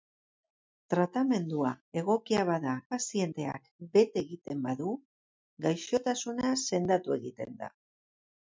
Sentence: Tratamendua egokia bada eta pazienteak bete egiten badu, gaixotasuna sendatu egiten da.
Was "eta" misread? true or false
true